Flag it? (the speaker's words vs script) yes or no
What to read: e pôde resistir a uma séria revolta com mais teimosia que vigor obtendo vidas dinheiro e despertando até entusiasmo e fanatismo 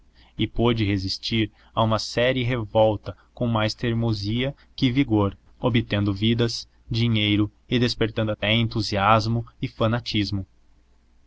no